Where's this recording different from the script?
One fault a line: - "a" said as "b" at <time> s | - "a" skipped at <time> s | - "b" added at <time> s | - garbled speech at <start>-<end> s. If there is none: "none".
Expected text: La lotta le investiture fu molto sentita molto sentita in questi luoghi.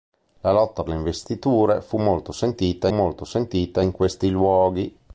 none